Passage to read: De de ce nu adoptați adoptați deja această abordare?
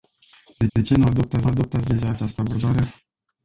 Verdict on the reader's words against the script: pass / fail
pass